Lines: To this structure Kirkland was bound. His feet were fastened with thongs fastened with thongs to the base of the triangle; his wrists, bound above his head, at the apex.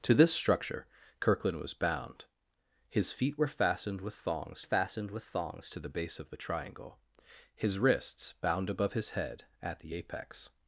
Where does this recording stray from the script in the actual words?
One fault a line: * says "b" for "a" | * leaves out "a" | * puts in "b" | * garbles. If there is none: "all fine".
all fine